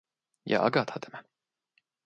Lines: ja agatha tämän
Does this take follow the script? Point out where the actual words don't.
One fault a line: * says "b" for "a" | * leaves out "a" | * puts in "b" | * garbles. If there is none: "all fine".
all fine